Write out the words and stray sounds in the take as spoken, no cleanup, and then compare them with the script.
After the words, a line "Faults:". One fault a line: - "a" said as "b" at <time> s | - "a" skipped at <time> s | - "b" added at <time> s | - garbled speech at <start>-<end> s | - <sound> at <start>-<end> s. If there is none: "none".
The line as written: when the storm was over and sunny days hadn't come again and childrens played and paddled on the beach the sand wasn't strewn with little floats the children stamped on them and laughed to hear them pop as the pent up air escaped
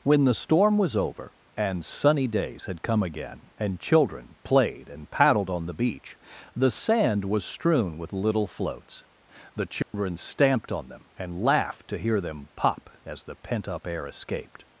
when the storm was over and sunny days had come again and children played and paddled on the beach the sand was strewn with little floats the children stamped on them and laughed to hear them pop as the pent up air escaped
Faults:
- "hadn't" said as "had" at 2.6 s
- "childrens" said as "children" at 3.8 s
- "wasn't" said as "was" at 7.2 s
- dropout at 9.8-9.9 s